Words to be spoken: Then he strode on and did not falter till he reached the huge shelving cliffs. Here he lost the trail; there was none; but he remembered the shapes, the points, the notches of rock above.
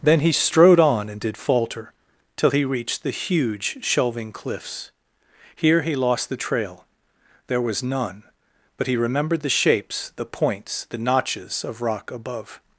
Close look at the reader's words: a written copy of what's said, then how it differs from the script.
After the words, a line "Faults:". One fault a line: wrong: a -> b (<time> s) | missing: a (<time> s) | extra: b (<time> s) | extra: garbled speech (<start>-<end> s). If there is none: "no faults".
Then he strode on and did falter till he reached the huge shelving cliffs. Here he lost the trail; there was none; but he remembered the shapes, the points, the notches of rock above.
Faults:
missing: not (1.4 s)